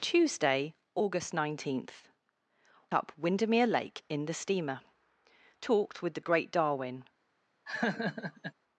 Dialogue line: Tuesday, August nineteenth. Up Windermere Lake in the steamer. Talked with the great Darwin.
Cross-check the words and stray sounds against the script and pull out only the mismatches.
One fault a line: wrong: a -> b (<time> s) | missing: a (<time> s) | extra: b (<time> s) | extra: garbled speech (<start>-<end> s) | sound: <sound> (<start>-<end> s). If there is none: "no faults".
sound: laugh (7.7-8.5 s)